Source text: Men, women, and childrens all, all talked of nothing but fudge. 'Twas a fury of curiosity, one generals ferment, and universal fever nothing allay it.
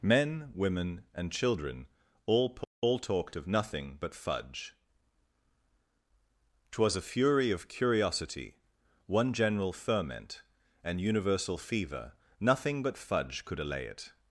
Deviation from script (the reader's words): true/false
true